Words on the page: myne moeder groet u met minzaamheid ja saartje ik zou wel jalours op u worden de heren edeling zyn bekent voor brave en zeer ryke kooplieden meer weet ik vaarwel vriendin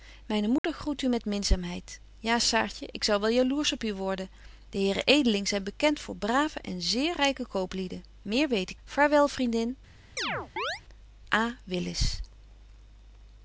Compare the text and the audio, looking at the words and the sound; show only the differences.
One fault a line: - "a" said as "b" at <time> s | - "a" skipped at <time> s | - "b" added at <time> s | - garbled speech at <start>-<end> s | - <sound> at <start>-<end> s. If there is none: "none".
- dropout at 0.6-0.6 s
- chirp at 10.2-10.8 s